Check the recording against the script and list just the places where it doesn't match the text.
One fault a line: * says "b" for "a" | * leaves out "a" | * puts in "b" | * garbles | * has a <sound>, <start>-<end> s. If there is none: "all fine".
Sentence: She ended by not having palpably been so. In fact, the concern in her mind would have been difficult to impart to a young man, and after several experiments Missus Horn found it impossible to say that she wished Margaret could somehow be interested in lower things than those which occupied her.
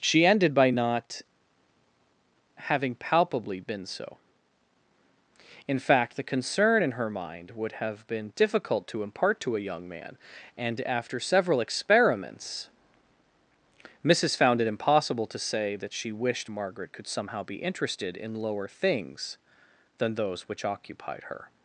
* leaves out "Horn"